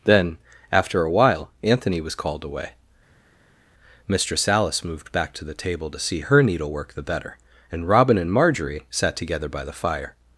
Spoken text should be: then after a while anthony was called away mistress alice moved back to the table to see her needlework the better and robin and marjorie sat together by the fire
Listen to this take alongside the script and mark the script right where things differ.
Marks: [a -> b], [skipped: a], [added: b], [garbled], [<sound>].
then after a while anthony was called away mistress alice moved back to the table to see her needlework the better and robin and marjorie sat together by the fire